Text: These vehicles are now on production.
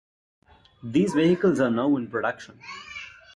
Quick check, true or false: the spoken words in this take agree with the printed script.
false